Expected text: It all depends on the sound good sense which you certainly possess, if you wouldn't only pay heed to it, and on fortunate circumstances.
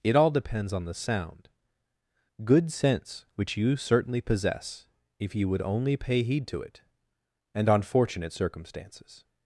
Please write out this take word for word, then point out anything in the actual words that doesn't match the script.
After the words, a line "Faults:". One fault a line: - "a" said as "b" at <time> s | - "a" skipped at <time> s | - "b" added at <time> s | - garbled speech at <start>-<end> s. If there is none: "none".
It all depends on the sound good sense which you certainly possess, if you would only pay heed to it, and on fortunate circumstances.
Faults:
- "wouldn't" said as "would" at 5.5 s